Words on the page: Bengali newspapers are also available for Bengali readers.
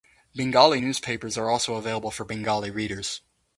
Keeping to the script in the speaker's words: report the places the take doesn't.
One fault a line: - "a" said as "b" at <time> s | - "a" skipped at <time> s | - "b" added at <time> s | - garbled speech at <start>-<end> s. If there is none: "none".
none